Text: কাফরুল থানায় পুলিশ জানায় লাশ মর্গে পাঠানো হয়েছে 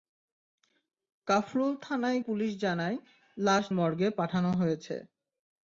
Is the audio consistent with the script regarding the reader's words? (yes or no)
yes